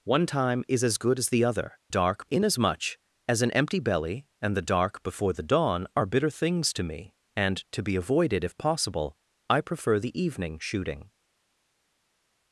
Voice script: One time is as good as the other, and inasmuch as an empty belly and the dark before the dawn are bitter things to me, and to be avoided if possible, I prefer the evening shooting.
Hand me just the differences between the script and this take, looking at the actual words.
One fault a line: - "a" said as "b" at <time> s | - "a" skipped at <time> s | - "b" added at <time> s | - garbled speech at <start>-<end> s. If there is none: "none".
- "and" said as "dark" at 1.9 s